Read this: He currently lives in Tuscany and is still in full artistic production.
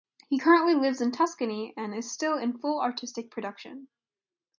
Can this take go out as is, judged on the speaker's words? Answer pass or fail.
pass